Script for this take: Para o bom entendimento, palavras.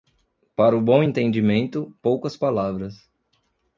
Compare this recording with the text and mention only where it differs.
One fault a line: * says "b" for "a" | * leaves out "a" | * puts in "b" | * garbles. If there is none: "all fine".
* puts in "poucas"